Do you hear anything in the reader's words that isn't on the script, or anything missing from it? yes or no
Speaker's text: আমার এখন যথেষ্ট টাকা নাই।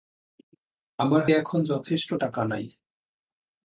no